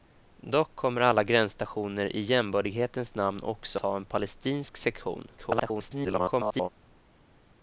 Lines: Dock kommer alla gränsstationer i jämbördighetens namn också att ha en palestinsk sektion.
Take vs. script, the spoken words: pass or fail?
fail